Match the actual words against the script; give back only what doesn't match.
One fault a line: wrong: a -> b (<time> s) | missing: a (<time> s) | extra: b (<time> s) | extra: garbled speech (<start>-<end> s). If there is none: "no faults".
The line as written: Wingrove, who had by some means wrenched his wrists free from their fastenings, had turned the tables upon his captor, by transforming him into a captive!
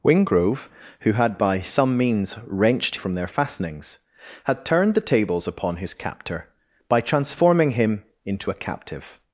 missing: his wrists free (3.0 s)